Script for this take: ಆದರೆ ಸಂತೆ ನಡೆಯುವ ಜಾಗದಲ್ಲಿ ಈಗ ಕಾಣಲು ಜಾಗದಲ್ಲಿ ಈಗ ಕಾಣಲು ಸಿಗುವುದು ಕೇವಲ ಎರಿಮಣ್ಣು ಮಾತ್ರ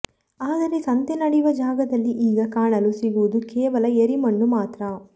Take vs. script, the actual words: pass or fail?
fail